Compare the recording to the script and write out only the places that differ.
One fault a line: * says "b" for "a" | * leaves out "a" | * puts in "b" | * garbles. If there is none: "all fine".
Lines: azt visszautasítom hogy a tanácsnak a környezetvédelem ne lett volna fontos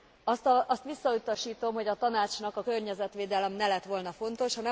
all fine